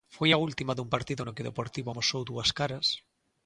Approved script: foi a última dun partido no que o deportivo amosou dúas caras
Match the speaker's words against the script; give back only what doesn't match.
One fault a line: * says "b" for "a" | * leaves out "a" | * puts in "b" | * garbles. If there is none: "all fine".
all fine